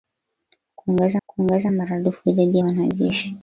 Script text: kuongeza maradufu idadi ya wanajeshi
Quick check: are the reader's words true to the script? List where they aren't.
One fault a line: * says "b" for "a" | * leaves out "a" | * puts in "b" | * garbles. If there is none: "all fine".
* puts in "kuongeza"
* leaves out "ya"